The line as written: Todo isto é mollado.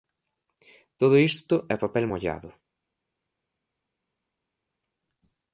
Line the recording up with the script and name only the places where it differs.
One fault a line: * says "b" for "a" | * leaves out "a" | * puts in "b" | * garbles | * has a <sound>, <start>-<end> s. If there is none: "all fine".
* puts in "papel"